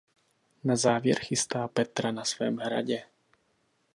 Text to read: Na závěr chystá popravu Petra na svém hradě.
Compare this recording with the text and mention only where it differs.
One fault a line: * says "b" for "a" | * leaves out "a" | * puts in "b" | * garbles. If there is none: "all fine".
* leaves out "popravu"